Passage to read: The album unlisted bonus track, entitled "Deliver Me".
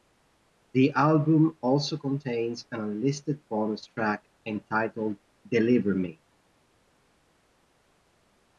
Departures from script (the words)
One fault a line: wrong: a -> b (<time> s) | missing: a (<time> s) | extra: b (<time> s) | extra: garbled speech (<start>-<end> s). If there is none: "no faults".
extra: also contains an (1.6 s)